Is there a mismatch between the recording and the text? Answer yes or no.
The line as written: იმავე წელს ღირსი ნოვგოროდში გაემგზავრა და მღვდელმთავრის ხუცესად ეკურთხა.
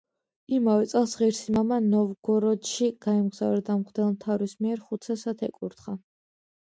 yes